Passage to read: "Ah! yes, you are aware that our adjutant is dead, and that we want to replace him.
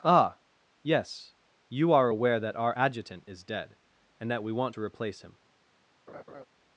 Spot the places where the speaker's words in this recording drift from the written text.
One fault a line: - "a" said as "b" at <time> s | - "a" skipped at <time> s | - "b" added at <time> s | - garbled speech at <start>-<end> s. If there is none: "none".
none